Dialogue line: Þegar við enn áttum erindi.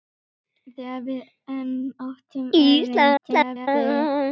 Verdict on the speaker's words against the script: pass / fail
fail